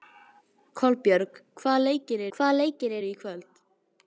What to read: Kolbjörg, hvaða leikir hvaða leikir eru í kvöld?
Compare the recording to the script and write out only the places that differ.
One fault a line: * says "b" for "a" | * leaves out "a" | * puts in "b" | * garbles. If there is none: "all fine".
all fine